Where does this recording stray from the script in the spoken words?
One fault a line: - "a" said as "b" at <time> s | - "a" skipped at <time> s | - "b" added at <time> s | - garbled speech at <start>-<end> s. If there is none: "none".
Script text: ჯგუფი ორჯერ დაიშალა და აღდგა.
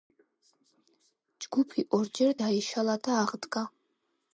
none